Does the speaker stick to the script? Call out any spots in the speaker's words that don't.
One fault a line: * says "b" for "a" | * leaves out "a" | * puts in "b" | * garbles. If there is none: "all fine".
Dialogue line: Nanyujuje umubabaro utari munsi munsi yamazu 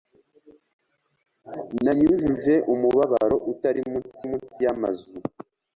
all fine